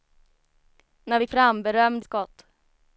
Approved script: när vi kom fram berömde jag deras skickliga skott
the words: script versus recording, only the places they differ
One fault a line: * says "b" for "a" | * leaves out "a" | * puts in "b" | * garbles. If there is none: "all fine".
* leaves out "kom"
* leaves out "jag deras skickliga"